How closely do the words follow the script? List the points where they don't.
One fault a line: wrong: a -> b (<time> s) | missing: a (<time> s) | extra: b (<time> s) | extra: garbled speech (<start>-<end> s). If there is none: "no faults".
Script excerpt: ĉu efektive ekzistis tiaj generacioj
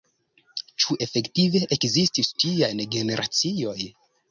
no faults